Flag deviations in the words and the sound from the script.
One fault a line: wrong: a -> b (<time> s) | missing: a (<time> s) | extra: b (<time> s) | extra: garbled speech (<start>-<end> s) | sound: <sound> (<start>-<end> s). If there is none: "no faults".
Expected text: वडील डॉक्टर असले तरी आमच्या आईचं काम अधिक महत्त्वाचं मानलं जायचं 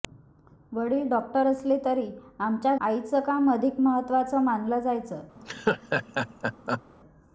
sound: laugh (5.4-6.8 s)